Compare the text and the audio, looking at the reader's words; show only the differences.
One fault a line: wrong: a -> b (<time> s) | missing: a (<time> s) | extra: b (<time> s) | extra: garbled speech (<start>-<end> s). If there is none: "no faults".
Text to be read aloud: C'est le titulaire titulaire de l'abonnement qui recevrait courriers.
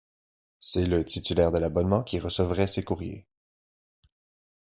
missing: titulaire (1.5 s)
extra: ces (2.7 s)